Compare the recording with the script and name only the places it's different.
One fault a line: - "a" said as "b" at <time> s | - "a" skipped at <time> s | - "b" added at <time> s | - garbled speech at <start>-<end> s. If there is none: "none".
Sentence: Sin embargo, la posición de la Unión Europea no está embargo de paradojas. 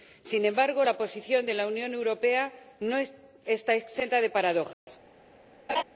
- "embargo" said as "exenta" at 3.7 s